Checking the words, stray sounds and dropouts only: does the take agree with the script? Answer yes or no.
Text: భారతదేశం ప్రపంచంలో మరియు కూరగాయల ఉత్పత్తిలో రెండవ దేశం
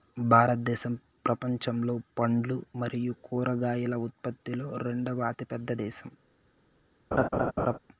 no